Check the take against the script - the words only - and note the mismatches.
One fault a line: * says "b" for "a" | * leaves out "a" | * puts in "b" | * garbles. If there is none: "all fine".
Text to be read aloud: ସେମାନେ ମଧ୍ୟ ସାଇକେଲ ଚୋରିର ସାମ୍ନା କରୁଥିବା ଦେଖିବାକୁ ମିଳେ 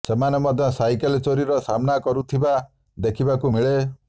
all fine